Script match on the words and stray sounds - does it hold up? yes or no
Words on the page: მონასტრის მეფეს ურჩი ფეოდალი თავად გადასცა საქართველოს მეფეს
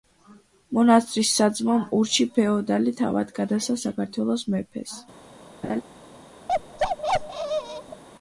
no